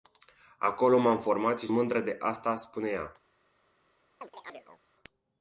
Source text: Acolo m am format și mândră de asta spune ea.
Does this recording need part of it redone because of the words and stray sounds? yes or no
yes